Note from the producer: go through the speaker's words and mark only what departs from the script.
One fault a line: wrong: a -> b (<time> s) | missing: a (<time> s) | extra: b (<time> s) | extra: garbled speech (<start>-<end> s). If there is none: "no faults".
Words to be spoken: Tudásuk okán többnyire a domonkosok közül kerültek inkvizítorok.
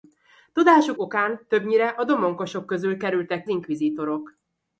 no faults